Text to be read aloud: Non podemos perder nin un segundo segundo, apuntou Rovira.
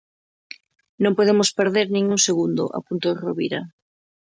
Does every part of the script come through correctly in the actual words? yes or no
no